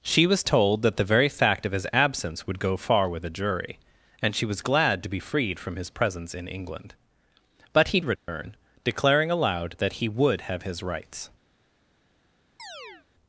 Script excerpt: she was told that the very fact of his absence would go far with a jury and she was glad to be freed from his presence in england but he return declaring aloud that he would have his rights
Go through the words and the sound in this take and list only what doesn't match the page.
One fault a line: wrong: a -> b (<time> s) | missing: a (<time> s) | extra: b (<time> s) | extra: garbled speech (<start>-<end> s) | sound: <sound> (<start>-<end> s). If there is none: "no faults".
sound: dropout (8.2-8.3 s)
sound: chirp (12.6-13.1 s)